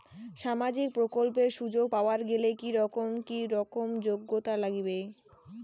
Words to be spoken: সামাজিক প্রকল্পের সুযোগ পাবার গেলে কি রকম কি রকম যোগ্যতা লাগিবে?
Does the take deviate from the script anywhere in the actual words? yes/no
no